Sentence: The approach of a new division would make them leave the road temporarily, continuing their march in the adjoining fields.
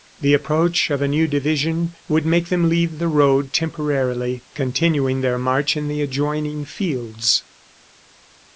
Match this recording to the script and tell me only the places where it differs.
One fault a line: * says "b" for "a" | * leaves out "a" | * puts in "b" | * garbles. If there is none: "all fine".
all fine